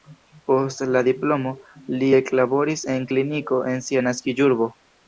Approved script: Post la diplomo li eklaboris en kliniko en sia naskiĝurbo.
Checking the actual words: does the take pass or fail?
pass